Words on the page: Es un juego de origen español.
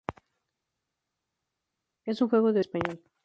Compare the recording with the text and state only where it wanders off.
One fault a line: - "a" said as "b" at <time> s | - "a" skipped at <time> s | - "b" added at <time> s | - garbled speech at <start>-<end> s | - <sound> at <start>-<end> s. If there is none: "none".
- "origen" skipped at 2.6 s